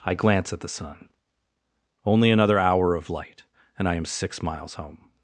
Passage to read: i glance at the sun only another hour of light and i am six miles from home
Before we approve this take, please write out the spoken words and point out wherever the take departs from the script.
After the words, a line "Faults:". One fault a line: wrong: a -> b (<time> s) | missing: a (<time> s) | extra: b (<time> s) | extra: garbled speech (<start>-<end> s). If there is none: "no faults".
i glance at the sun only another hour of light and i am six miles home
Faults:
missing: from (4.8 s)